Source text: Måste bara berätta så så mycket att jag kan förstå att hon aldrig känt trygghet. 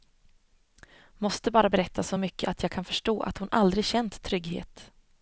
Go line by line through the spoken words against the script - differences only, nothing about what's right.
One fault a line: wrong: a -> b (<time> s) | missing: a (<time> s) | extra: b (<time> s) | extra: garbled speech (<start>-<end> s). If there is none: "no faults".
missing: så (2.2 s)